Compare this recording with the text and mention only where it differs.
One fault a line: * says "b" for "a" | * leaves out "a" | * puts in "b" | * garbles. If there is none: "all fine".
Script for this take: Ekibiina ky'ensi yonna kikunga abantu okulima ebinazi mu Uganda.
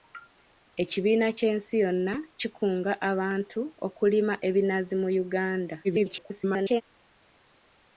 * garbles